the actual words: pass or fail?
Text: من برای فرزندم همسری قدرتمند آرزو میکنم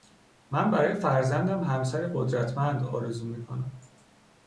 pass